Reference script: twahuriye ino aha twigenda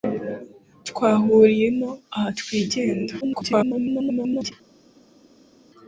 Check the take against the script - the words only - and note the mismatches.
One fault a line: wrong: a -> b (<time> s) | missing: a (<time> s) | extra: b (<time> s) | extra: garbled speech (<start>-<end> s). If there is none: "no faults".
extra: garbled speech (3.2-4.5 s)